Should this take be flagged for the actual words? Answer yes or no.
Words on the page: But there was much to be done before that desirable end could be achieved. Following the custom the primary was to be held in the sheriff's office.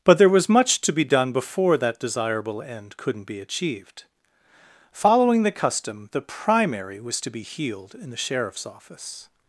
yes